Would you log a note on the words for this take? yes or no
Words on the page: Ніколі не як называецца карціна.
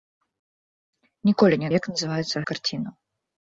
no